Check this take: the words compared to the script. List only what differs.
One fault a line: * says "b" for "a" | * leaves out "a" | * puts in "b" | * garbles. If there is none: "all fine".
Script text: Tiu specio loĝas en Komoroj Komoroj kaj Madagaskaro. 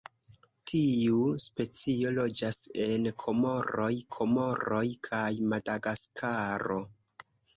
all fine